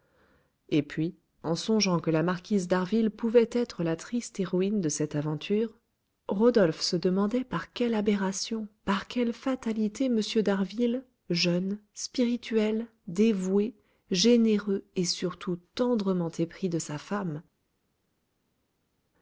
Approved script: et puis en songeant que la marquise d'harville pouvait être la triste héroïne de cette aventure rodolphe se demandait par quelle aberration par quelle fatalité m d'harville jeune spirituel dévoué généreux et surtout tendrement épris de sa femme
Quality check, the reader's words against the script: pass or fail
pass